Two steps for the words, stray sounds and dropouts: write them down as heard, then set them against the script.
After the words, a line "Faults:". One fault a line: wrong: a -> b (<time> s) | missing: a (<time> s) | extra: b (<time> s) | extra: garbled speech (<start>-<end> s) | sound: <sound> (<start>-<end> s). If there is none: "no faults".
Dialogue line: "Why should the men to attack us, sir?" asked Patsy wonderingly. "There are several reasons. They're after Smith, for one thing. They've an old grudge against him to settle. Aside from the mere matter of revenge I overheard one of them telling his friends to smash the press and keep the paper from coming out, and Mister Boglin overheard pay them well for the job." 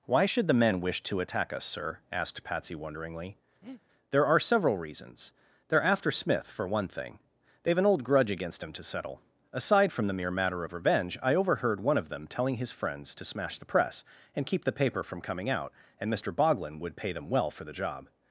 "Why should the men wish to attack us, sir?" asked Patsy wonderingly. "There are several reasons. They're after Smith, for one thing. They've an old grudge against him to settle. Aside from the mere matter of revenge I overheard one of them telling his friends to smash the press and keep the paper from coming out, and Mister Boglin would pay them well for the job."
Faults:
extra: wish (0.8 s)
sound: breath (3.6-3.8 s)
wrong: overheard -> would (16.8 s)